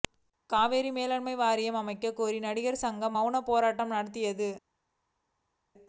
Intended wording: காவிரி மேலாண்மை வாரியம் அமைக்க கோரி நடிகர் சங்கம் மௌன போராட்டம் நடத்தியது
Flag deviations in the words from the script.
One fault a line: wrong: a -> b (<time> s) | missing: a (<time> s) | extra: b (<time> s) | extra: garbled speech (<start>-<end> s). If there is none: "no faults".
no faults